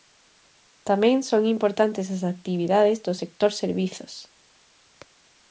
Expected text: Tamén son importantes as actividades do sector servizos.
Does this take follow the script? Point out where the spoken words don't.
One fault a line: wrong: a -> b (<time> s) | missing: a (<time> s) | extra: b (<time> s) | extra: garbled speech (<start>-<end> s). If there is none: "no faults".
no faults